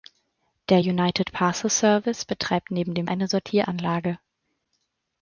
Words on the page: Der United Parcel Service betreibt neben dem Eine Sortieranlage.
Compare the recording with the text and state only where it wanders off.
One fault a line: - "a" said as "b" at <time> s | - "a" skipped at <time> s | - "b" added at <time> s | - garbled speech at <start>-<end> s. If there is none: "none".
none